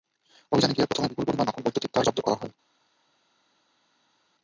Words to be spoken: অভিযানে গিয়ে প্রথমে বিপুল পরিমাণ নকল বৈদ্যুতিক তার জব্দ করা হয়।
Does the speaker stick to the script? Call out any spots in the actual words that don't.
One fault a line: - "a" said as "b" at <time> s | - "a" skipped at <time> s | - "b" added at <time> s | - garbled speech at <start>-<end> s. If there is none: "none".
none